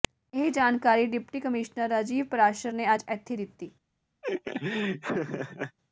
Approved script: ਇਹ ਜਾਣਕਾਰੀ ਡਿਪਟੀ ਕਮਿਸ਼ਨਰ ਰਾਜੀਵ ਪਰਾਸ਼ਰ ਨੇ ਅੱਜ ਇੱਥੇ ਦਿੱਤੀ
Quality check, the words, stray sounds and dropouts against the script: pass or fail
fail